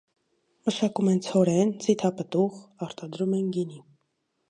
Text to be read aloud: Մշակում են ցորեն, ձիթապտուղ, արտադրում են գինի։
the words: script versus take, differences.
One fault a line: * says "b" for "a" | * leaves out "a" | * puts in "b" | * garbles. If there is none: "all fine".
all fine